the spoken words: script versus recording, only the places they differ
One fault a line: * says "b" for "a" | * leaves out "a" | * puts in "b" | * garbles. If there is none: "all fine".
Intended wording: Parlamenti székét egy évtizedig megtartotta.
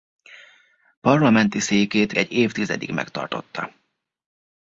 all fine